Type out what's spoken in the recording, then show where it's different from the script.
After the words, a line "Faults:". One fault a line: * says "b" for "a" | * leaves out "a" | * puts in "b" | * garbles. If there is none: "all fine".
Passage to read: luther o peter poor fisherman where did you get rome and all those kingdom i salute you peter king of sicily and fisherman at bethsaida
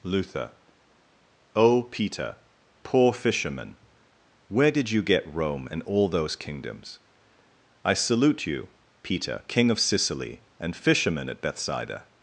luther o peter poor fisherman where did you get rome and all those kingdoms i salute you peter king of sicily and fisherman at bethsaida
Faults:
* says "kingdoms" for "kingdom"